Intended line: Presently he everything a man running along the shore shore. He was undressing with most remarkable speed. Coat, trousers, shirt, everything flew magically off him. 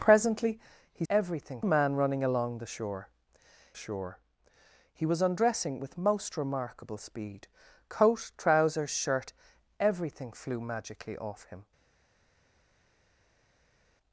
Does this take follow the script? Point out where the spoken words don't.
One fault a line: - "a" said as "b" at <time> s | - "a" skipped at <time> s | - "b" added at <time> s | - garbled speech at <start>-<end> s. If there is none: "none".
none